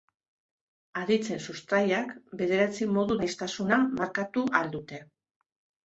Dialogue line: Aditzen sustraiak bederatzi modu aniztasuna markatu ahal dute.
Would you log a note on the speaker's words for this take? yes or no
no